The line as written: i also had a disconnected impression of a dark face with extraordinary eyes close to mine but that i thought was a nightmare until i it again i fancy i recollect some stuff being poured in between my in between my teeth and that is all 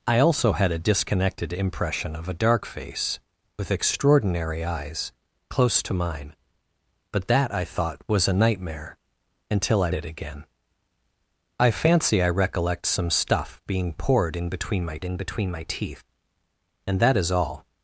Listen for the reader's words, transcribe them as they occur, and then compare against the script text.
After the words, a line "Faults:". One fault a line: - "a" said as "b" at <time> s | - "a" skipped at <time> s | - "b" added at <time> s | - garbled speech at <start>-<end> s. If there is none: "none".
i also had a disconnected impression of a dark face with extraordinary eyes close to mine but that i thought was a nightmare until i it again i fancy i recollect some stuff being poured in between my in between my teeth and that is all
Faults:
none